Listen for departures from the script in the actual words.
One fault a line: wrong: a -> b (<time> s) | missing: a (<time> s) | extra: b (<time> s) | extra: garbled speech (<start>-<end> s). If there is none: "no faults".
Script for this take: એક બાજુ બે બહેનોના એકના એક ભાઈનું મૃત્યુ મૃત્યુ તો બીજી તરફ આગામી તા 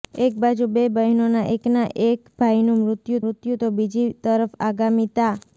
no faults